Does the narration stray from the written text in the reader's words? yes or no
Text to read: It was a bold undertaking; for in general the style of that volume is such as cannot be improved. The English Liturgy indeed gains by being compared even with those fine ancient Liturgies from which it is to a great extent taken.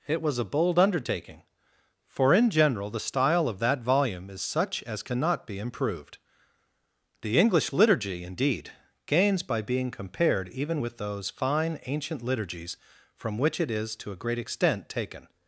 no